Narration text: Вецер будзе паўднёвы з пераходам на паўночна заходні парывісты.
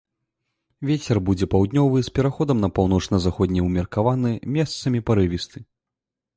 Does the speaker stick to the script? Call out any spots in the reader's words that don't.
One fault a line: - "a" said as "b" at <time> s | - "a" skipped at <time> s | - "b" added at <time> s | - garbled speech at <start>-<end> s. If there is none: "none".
- "ўмеркаваны месцамі" added at 3.7 s